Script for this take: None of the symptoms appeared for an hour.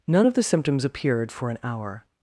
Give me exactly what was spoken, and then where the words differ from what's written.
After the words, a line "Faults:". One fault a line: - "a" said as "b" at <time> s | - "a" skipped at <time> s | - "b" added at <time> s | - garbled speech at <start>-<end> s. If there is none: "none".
None of the symptoms appeared for an hour.
Faults:
none